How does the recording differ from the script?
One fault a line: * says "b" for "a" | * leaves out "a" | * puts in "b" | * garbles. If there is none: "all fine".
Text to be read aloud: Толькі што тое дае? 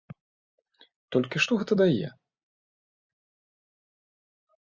* says "гэта" for "тое"